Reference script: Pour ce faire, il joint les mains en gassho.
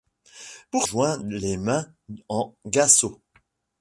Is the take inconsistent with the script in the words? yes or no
yes